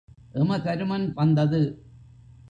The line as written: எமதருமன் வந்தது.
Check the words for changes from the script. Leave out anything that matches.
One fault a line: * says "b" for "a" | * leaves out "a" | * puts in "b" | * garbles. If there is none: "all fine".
all fine